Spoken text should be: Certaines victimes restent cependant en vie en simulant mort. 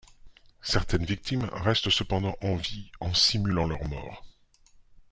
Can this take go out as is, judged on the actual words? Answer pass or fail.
fail